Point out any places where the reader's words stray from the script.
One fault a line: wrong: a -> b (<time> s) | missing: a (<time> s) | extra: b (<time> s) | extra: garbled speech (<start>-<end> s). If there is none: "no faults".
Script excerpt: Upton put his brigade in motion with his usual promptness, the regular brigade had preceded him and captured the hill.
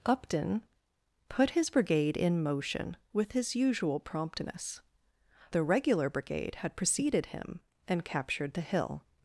no faults